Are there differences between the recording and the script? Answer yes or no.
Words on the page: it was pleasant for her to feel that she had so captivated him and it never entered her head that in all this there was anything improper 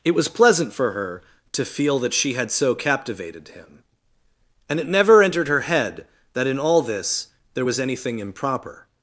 no